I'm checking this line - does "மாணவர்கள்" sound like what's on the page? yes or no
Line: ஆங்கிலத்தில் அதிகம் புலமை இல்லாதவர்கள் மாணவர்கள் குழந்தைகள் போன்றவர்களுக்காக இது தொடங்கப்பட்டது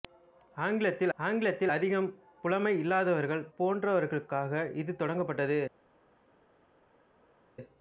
no